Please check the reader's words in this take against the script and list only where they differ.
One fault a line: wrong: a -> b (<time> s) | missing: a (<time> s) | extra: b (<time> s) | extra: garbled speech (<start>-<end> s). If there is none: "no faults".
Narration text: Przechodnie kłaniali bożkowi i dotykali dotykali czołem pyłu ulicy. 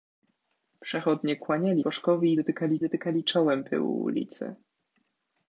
no faults